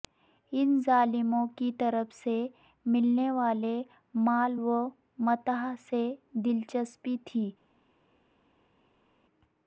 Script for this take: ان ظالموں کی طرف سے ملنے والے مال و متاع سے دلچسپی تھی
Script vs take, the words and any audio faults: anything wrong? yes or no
no